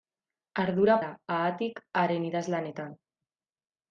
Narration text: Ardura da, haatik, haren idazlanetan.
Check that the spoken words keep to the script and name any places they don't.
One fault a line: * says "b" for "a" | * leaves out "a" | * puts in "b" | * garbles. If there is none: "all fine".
all fine